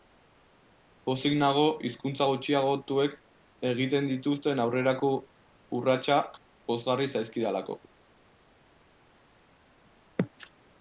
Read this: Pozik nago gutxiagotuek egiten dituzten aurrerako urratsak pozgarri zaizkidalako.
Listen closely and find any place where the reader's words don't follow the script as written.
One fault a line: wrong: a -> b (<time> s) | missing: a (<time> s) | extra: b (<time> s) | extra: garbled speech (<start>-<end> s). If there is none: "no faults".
extra: hizkuntza (1.9 s)